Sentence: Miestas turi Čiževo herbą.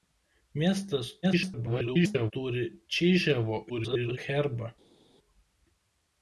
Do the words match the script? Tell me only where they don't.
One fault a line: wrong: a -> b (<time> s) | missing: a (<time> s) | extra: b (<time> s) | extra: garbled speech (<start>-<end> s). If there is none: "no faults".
extra: garbled speech (1.2-2.3 s)
extra: garbled speech (3.7-4.2 s)